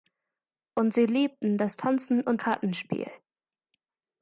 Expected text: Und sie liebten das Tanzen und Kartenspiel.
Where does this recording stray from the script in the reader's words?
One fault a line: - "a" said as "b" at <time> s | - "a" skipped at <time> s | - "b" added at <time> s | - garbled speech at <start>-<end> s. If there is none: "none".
none